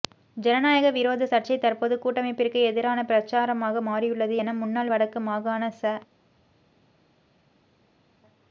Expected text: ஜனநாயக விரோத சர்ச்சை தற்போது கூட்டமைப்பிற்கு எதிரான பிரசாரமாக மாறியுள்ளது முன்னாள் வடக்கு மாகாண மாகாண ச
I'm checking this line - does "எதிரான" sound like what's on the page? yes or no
yes